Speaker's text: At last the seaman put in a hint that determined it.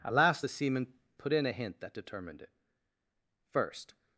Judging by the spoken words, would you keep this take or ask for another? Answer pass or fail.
fail